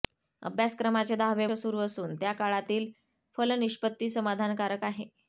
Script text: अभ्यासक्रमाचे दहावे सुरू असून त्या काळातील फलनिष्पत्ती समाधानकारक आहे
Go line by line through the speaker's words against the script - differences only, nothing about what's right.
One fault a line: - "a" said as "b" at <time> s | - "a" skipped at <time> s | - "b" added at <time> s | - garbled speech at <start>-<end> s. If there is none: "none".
none